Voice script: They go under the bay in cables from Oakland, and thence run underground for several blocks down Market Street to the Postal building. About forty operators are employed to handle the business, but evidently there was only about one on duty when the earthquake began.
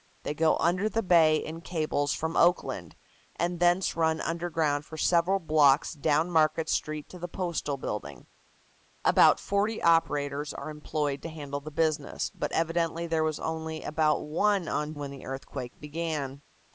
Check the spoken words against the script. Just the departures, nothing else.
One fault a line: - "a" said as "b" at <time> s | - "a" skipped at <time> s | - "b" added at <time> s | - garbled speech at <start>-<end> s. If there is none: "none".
- "duty" skipped at 14.9 s